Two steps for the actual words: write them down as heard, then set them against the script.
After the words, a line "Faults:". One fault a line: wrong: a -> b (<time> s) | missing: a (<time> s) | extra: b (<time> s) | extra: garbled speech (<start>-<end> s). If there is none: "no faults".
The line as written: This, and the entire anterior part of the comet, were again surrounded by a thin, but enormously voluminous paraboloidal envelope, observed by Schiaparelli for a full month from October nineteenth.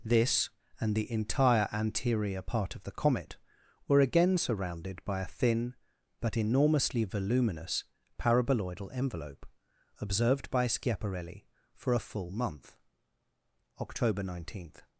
This, and the entire anterior part of the comet, were again surrounded by a thin, but enormously voluminous paraboloidal envelope, observed by Schiaparelli for a full month October nineteenth.
Faults:
missing: from (12.8 s)